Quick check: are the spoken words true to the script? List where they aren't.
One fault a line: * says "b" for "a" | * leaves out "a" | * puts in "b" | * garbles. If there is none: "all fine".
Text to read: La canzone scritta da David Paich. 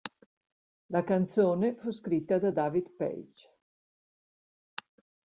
* puts in "fu"